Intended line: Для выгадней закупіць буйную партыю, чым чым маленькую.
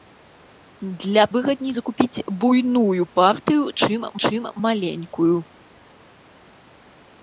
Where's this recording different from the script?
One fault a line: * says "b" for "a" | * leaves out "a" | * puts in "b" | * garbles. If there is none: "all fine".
all fine